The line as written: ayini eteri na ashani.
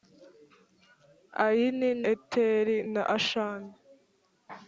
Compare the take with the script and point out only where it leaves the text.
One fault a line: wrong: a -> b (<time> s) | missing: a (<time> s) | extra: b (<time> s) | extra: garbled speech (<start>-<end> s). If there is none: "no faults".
no faults